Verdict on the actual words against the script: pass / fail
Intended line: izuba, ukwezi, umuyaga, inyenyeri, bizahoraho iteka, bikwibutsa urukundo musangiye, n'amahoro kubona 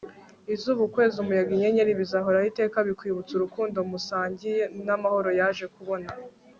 fail